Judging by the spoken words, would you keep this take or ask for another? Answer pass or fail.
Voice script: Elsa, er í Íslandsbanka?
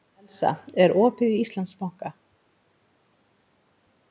fail